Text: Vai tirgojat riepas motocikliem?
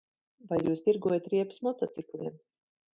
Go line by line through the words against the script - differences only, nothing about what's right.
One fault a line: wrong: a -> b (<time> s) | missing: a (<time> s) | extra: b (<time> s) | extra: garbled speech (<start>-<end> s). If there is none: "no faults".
extra: jūs (0.7 s)